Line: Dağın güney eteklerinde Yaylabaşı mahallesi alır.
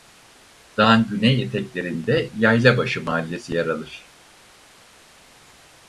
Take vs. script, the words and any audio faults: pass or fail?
fail